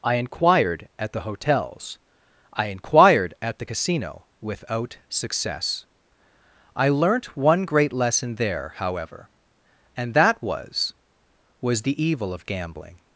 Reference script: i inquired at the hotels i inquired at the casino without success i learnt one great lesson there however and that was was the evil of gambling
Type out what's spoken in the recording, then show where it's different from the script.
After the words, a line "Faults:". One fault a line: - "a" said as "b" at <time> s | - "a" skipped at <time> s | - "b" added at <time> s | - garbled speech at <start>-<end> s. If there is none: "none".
i inquired at the hotels i inquired at the casino without success i learnt one great lesson there however and that was was the evil of gambling
Faults:
none